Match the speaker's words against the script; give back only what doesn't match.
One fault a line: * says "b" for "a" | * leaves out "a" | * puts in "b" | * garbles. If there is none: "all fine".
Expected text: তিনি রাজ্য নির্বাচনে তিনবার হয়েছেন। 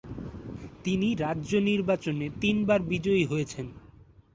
* puts in "বিজয়ী"